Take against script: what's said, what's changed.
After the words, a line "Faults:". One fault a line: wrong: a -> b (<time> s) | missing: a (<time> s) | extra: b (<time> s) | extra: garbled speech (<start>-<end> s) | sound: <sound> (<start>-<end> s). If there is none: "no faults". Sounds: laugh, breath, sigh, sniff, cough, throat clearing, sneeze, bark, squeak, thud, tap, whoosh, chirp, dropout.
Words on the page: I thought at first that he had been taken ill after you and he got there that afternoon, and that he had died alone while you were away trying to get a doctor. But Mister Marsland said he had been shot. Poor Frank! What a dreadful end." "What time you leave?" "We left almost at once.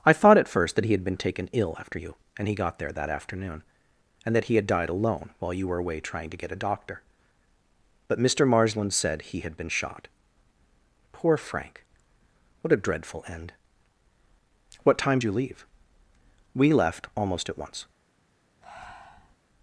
I thought at first that he had been taken ill after you and he got there that afternoon, and that he had died alone while you were away trying to get a doctor. But Mister Marsland said he had been shot. Poor Frank! What a dreadful end." "What time you leave?" "We left almost at once.
Faults:
sound: breath (18.6-19.3 s)